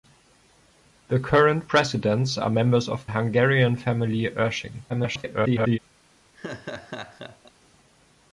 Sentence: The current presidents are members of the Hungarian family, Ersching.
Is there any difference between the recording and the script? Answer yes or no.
yes